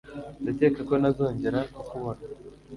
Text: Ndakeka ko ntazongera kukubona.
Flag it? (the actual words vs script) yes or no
no